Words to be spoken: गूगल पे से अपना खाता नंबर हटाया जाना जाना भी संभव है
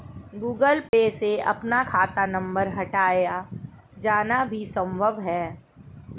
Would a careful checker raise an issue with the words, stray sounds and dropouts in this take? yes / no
yes